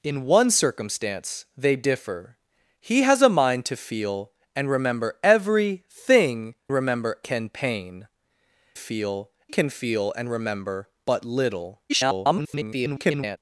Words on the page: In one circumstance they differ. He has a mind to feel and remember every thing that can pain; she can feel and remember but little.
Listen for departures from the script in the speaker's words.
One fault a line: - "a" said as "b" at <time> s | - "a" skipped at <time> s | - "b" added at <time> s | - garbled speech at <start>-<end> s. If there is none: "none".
- "that" said as "remember" at 6.7 s
- "she" said as "feel" at 8.7 s
- garbled speech at 11.9-13.4 s